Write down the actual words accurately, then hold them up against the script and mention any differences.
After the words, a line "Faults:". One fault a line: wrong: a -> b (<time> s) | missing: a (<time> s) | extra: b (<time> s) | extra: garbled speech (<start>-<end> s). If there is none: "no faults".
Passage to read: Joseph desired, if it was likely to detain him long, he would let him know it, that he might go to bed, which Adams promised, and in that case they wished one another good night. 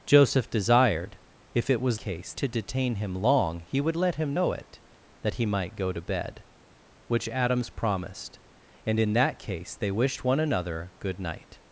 Joseph desired, if it was case to detain him long, he would let him know it, that he might go to bed, which Adams promised, and in that case they wished one another good night.
Faults:
wrong: likely -> case (2.0 s)